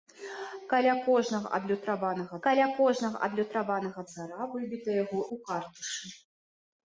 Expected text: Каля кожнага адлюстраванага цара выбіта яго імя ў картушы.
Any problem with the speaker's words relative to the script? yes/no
yes